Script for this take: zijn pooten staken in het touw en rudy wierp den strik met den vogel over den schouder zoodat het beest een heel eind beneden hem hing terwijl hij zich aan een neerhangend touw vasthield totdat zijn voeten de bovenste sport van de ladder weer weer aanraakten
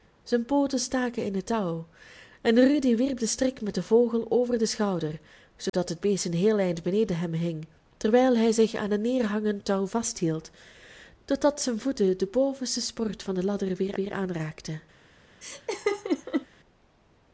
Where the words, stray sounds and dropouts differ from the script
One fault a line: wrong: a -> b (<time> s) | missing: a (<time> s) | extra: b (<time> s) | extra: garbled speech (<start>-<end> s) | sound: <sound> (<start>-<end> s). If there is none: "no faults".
sound: dropout (5.7-5.7 s)
sound: laugh (15.4-16.5 s)